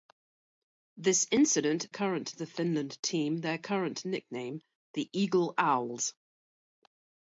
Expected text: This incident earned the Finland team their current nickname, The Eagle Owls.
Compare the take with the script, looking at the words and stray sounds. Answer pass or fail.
fail